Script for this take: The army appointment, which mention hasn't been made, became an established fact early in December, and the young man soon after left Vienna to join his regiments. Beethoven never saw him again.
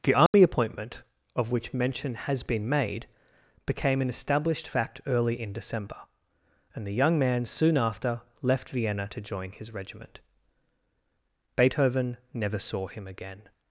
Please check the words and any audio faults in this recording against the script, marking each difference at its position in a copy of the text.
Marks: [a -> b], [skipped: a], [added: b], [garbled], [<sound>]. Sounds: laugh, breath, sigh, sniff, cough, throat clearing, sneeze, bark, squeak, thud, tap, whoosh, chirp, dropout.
The army [dropout] appointment, [added: of] which mention [hasn't -> has] been made, became an established fact early in December, and the young man soon after left Vienna to join his [regiments. -> regiment] Beethoven never saw him again.